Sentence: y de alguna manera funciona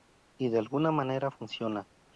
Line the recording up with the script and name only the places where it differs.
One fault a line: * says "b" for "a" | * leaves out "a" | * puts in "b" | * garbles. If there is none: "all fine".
all fine